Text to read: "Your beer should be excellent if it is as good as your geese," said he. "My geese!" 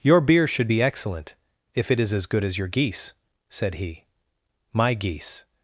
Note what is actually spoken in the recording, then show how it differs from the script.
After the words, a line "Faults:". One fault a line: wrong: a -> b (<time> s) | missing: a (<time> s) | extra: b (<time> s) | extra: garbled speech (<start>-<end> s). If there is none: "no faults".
"Your beer should be excellent if it is as good as your geese," said he. "My geese!"
Faults:
no faults